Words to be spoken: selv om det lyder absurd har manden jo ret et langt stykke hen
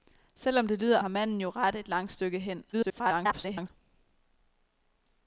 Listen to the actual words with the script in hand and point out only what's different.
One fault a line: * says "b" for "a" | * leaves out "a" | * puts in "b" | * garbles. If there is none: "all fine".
* leaves out "absurd"
* garbles